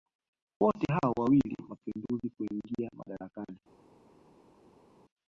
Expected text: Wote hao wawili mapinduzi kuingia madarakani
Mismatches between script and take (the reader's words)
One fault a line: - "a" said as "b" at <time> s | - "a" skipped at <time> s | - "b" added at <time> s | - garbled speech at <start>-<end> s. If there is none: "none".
none